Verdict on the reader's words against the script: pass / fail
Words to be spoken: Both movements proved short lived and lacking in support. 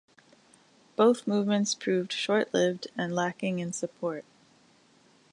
pass